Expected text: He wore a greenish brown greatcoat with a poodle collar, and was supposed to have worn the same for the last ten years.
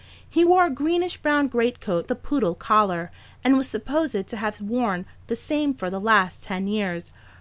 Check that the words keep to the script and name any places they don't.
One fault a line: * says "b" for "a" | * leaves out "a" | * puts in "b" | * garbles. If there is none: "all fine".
* leaves out "with"